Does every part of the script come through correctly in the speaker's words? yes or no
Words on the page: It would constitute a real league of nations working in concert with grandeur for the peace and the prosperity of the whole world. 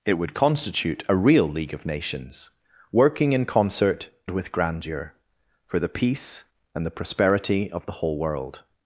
yes